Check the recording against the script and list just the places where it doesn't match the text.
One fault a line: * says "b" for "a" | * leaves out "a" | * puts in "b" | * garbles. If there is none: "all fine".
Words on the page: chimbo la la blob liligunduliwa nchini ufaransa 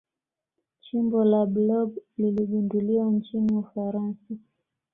* leaves out "la"